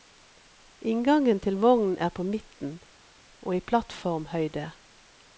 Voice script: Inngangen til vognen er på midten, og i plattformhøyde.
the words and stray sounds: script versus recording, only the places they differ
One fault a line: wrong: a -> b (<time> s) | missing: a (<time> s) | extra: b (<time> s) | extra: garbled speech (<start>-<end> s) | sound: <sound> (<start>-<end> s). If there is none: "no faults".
no faults